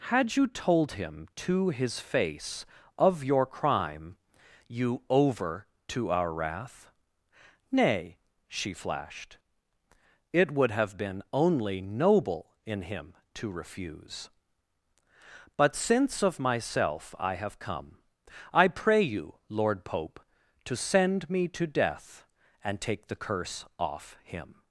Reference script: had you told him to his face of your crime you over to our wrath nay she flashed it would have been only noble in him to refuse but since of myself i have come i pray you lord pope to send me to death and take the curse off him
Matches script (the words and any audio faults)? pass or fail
pass